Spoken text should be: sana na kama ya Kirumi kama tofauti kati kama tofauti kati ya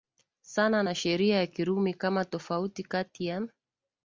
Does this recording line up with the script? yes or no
no